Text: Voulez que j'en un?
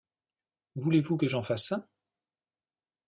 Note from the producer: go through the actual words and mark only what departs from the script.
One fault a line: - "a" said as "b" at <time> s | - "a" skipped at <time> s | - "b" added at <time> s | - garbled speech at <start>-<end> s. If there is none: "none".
- "vous" added at 1.0 s
- "fasse" added at 1.4 s